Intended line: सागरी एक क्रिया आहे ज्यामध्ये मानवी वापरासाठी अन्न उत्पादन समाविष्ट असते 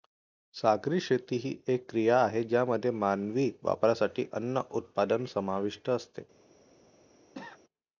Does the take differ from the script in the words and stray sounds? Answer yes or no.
yes